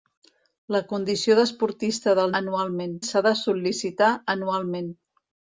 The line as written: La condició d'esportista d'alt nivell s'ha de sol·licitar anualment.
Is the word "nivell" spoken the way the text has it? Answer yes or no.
no